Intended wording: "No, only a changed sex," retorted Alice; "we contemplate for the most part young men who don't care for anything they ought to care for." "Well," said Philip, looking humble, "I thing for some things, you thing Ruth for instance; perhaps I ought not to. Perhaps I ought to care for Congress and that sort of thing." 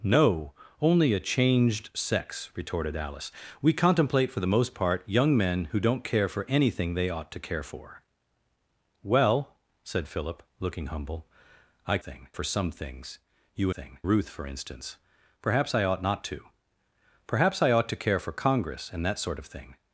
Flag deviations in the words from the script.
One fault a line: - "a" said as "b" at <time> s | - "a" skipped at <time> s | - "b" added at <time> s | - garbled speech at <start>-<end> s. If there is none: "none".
none